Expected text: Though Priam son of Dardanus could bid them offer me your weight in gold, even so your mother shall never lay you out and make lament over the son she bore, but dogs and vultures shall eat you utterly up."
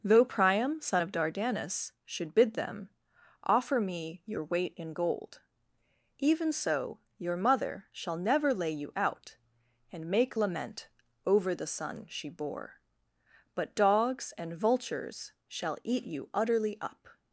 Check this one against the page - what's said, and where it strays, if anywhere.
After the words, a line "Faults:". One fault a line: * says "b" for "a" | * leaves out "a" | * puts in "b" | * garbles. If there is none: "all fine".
Though Priam son of Dardanus should bid them offer me your weight in gold, even so your mother shall never lay you out and make lament over the son she bore, but dogs and vultures shall eat you utterly up."
Faults:
* says "should" for "could"